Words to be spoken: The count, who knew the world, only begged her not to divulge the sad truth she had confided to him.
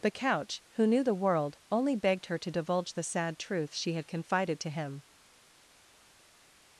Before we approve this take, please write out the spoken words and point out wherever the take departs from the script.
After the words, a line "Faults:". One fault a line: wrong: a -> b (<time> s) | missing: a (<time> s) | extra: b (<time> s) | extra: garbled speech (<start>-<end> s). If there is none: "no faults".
The couch, who knew the world, only begged her to divulge the sad truth she had confided to him.
Faults:
wrong: count -> couch (0.1 s)
missing: not (2.4 s)